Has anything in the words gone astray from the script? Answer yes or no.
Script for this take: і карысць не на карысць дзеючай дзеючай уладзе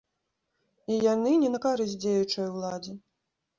yes